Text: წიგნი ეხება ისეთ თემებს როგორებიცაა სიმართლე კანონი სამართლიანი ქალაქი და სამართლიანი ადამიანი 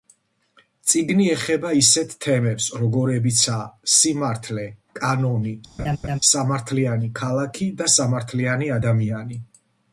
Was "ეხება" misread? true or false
false